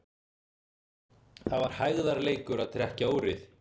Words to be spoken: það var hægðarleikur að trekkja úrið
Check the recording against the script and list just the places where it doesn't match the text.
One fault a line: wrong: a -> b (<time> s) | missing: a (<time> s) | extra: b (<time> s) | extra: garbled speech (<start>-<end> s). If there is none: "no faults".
no faults